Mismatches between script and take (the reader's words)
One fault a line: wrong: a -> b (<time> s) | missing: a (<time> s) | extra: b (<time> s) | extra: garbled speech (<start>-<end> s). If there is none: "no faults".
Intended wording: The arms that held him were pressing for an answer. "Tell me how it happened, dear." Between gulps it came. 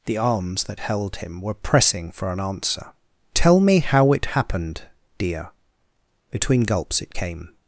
no faults